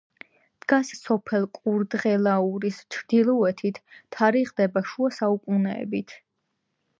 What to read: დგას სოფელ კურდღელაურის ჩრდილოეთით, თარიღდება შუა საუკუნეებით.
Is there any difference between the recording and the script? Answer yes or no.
no